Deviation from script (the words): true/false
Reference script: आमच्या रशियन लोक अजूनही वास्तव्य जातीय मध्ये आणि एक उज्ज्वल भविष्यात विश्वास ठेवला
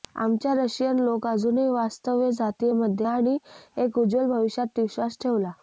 false